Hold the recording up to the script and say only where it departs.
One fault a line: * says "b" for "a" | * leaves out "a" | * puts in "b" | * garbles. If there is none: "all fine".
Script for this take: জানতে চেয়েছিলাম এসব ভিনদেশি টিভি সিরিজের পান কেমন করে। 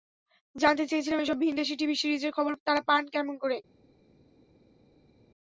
* puts in "খবর তাঁরা"